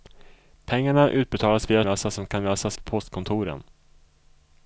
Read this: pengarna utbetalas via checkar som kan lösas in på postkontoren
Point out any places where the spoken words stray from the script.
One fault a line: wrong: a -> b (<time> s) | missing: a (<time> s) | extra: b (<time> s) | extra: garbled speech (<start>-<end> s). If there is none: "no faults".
wrong: checkar -> lösas (1.8 s)
missing: in (2.8 s)